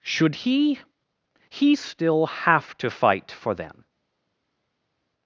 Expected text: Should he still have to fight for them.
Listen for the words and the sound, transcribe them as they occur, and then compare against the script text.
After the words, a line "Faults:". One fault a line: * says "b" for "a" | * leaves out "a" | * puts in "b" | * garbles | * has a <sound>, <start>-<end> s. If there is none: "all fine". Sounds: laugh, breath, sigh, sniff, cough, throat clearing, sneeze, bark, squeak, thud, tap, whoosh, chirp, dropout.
Should he he still have to fight for them.
Faults:
* puts in "he"